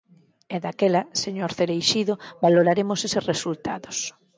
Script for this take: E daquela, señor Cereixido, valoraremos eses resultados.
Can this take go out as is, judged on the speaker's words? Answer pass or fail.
pass